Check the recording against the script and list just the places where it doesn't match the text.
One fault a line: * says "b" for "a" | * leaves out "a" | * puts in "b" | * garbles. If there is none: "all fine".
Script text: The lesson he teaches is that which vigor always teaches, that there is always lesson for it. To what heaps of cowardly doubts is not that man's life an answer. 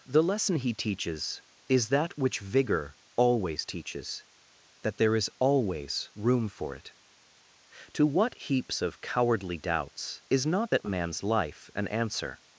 * says "room" for "lesson"